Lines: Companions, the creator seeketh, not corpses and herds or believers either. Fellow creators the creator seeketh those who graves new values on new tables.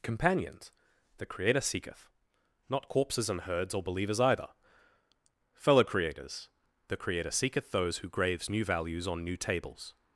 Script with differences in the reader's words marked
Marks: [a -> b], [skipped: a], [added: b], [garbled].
Companions, the creator seeketh, not corpses and herds or believers either. Fellow creators the creator seeketh those who graves new values on new tables.